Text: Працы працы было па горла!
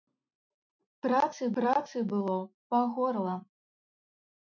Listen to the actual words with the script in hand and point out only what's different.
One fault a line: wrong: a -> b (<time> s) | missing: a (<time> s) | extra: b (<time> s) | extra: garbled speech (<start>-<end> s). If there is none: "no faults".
no faults